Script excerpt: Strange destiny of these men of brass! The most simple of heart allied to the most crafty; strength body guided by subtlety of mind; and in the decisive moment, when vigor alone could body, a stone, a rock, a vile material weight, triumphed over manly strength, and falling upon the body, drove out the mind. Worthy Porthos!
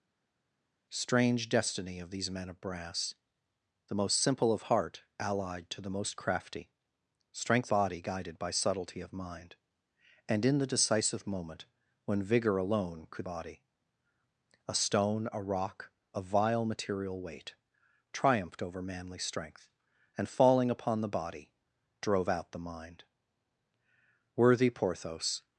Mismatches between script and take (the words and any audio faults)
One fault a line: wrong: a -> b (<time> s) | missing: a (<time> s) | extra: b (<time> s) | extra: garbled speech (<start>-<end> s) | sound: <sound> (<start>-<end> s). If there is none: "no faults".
no faults